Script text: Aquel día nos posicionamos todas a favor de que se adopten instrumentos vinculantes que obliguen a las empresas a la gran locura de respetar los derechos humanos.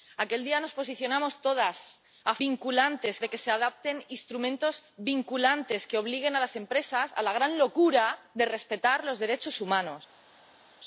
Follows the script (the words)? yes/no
no